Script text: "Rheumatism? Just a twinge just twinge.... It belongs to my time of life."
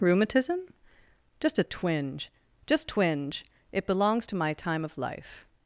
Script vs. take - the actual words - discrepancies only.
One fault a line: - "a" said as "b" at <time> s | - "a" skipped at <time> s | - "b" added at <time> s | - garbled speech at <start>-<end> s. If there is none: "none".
none